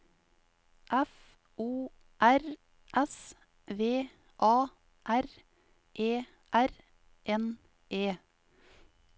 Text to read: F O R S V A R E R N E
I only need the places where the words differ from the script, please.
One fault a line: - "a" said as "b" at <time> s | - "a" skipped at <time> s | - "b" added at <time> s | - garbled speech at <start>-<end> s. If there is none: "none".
none